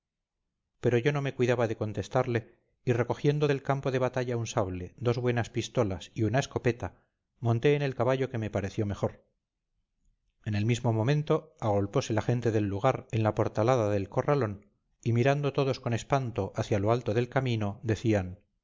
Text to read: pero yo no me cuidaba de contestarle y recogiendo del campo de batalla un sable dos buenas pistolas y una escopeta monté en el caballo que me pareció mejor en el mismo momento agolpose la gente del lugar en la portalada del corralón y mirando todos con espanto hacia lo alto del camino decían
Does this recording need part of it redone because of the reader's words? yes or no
no